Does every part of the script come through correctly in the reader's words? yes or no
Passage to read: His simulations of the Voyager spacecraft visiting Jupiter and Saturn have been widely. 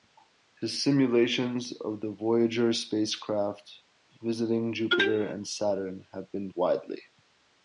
yes